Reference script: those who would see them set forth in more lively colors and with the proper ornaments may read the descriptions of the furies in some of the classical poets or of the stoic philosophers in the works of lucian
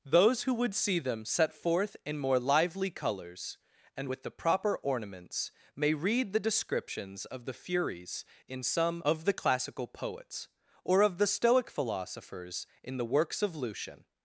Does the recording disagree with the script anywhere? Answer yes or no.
no